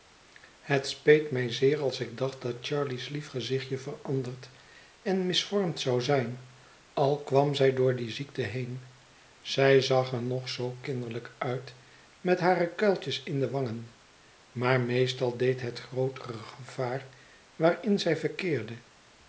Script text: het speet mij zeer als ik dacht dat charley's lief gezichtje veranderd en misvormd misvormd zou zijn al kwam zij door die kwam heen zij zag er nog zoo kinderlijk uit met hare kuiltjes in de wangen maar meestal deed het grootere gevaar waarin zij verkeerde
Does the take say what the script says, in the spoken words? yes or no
no